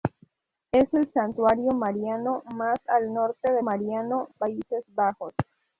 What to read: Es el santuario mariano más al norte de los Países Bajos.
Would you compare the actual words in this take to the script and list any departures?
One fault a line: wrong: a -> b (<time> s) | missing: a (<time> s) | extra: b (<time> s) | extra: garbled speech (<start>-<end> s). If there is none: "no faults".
wrong: los -> mariano (3.6 s)